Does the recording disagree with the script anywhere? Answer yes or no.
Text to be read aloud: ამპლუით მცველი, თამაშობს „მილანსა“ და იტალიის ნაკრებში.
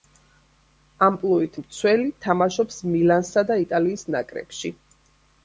no